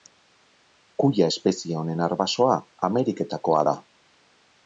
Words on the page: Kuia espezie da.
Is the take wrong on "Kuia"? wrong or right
right